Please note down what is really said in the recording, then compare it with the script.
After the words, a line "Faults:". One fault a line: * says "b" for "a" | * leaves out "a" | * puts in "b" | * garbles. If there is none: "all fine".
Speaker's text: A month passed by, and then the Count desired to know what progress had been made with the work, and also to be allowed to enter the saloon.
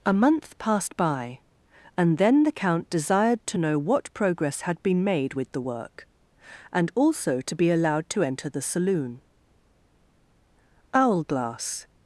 A month passed by, and then the Count desired to know what progress had been made with the work, and also to be allowed to enter the saloon. Owlglass
Faults:
* puts in "Owlglass"